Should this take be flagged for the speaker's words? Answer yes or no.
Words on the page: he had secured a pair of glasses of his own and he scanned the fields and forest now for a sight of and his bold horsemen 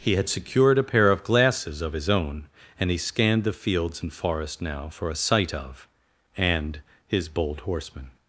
no